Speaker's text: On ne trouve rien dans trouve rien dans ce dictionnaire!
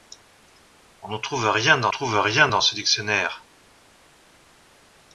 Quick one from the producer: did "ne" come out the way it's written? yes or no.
yes